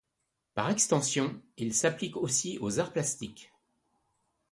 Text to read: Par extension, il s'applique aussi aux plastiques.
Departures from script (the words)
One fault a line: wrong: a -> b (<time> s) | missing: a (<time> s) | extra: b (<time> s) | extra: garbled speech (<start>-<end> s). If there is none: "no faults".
extra: arts (2.8 s)